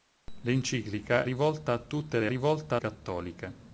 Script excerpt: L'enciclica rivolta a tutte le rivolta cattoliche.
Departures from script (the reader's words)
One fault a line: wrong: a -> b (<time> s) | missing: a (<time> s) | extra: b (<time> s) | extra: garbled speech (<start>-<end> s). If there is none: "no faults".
no faults